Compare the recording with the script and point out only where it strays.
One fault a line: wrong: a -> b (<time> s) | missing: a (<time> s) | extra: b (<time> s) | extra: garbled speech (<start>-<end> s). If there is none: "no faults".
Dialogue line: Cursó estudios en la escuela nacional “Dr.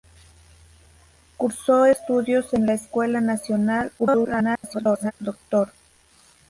extra: garbled speech (4.0-5.1 s)